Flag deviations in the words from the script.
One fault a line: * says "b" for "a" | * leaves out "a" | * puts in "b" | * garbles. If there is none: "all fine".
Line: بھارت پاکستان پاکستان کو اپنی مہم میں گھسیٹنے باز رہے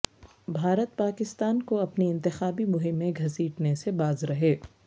* leaves out "پاکستان"
* puts in "انتخابی"
* puts in "سے"